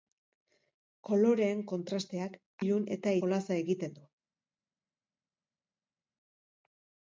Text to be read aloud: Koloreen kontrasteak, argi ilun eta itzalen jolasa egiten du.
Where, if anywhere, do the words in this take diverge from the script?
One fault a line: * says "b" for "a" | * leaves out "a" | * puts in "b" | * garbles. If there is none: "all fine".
* leaves out "argi"
* leaves out "itzalen"